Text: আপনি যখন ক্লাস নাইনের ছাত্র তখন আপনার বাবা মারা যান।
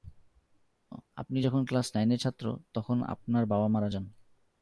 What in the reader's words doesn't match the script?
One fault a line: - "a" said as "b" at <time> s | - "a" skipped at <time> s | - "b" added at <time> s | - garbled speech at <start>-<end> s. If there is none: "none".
none